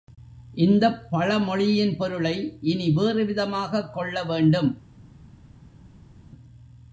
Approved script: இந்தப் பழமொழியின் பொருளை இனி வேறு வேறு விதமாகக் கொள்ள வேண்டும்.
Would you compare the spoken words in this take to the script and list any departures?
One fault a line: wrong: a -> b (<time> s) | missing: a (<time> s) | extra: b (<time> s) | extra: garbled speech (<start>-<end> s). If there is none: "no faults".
missing: வேறு (3.2 s)